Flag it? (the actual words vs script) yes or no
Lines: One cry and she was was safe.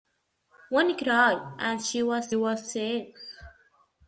no